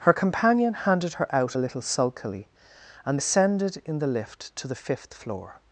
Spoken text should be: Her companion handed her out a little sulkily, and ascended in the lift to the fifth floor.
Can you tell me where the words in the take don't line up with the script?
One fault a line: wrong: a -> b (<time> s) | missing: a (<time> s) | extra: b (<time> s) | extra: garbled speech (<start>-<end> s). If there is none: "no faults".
no faults